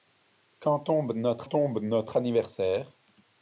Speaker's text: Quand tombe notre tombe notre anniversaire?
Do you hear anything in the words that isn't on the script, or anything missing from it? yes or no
no